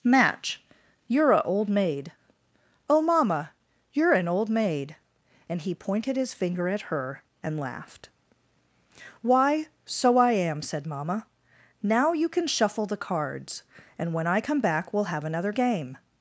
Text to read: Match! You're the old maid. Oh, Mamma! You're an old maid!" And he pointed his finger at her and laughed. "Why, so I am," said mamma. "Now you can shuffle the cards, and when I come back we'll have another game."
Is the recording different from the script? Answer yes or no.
yes